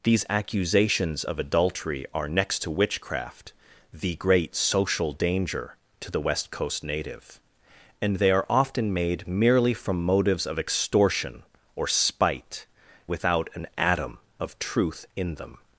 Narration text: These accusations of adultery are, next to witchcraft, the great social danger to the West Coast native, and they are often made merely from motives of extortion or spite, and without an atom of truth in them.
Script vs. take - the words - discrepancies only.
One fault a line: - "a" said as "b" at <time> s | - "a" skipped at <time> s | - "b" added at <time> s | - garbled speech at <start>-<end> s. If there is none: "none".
- "and" skipped at 12.6 s